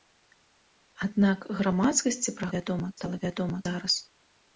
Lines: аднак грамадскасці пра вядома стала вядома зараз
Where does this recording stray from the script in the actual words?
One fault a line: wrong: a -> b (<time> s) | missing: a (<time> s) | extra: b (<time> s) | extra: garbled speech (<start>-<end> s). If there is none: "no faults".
no faults